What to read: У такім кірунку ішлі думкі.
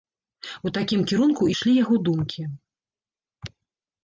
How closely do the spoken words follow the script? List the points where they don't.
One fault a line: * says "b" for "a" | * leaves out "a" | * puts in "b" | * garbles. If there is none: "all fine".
* puts in "яго"